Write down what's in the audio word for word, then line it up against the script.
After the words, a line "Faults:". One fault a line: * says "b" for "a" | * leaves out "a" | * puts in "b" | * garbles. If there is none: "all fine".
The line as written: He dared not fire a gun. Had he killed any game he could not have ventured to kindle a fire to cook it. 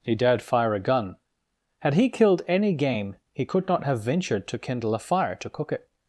He dared fire a gun. Had he killed any game he could not have ventured to kindle a fire to cook it.
Faults:
* leaves out "not"